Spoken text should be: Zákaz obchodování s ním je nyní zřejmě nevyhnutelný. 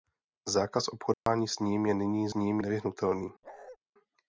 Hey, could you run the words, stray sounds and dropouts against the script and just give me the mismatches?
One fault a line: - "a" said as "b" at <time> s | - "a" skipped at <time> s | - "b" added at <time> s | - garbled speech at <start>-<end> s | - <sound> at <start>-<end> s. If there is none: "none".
- dropout at 1.1-1.3 s
- "zřejmě" said as "ním" at 2.3 s
- bark at 3.4-3.8 s